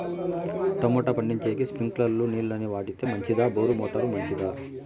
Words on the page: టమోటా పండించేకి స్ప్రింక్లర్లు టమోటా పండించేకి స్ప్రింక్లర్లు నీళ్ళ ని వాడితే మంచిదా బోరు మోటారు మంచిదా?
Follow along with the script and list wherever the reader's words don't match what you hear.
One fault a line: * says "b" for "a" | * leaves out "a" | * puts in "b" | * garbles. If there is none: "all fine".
* leaves out "టమోటా పండించేకి స్ప్రింక్లర్లు"